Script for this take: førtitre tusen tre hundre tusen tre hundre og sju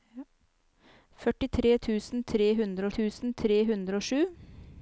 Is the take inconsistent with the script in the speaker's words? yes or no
no